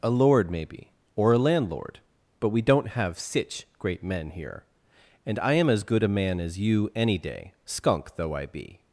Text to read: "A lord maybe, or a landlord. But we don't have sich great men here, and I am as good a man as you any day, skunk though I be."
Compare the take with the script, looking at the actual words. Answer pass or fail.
pass